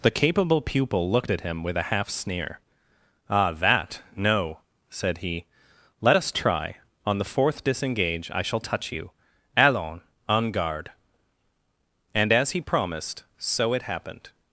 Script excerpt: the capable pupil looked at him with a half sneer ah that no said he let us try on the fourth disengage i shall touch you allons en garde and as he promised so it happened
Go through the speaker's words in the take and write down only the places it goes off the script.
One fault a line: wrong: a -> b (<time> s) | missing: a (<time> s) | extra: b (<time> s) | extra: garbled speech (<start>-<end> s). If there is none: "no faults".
no faults